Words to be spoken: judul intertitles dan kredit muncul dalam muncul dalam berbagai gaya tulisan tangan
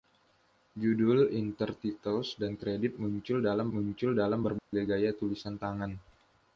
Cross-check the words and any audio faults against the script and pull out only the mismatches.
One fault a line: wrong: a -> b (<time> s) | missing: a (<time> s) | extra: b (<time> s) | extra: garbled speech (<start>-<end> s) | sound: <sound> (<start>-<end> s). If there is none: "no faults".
sound: dropout (4.6-4.7 s)